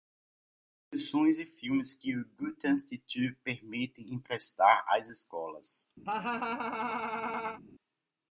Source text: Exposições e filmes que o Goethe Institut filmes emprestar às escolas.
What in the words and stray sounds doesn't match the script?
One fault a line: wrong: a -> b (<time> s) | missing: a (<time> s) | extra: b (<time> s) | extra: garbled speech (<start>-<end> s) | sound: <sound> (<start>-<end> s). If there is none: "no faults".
wrong: filmes -> permite (3.4 s)
sound: laugh (6.1-7.6 s)